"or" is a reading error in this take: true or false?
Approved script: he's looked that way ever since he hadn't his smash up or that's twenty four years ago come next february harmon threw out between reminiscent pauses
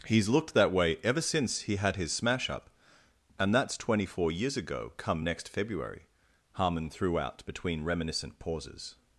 true